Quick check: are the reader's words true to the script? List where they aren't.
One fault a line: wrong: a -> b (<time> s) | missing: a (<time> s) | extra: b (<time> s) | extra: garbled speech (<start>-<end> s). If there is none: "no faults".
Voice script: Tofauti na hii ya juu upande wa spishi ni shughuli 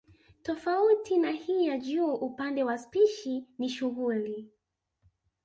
no faults